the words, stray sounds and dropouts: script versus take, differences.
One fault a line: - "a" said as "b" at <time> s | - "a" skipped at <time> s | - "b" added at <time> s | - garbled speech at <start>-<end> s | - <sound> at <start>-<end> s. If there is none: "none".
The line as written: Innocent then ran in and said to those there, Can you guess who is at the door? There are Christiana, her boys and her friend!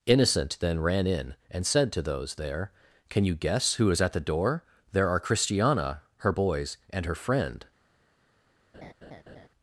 - laugh at 8.7-9.5 s